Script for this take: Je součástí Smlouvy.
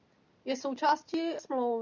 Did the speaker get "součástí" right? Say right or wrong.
right